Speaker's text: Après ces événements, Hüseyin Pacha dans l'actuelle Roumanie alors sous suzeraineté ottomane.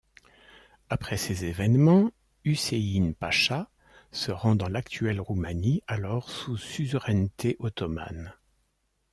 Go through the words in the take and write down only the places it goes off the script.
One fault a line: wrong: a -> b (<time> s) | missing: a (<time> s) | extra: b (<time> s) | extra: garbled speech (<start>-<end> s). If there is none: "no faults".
extra: se rend (4.1 s)